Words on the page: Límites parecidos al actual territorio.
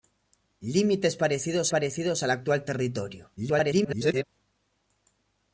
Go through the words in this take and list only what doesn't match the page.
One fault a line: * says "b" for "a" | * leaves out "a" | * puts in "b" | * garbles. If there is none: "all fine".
* puts in "parecidos"
* garbles